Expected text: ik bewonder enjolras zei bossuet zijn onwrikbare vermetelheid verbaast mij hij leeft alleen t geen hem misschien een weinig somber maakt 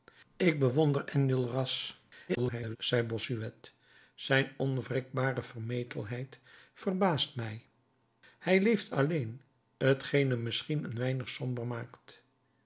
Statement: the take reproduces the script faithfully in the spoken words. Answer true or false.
false